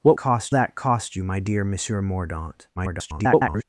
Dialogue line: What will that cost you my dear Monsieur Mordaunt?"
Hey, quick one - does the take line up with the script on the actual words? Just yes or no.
no